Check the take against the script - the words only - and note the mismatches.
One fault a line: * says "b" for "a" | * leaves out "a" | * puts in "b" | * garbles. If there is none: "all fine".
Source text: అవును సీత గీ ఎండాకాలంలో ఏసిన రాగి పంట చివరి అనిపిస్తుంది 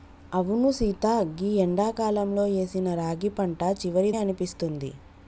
all fine